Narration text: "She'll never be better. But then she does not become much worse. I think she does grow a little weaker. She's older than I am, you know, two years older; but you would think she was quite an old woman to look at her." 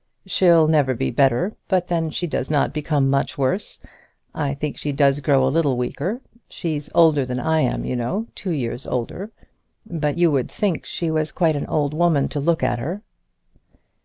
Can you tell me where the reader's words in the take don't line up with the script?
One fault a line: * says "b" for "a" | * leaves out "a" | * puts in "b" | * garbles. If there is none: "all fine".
all fine